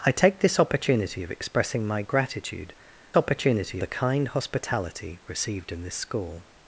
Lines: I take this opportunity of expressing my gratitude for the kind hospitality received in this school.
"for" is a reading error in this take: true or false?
true